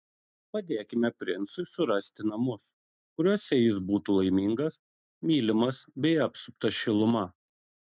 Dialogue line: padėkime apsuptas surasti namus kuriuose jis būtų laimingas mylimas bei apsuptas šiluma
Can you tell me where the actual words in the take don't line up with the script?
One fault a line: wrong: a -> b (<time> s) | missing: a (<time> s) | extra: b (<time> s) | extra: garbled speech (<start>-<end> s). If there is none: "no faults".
wrong: apsuptas -> princui (1.2 s)